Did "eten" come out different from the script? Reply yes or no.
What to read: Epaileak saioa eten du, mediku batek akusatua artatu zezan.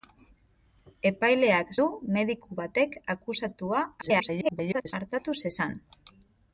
yes